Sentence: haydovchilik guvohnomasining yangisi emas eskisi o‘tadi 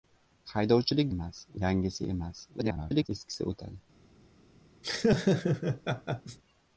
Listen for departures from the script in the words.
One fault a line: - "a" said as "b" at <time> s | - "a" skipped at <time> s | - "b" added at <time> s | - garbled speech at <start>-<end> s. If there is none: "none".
- "guvohnomasining" said as "emas" at 1.2 s
- garbled speech at 2.6-3.1 s